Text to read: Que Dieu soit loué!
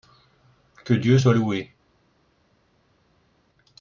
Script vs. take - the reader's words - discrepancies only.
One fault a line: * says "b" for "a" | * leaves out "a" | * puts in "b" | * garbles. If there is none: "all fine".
all fine